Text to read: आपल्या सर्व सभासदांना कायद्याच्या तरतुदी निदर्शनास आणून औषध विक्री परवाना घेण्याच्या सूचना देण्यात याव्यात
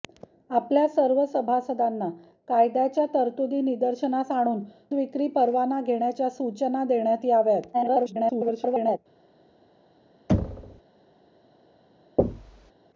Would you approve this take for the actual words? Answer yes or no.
no